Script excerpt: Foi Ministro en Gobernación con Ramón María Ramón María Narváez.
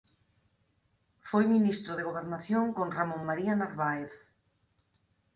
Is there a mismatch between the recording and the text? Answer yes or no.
yes